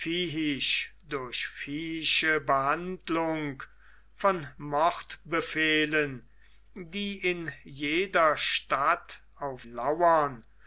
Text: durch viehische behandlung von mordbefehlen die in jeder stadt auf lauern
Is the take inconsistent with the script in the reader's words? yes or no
no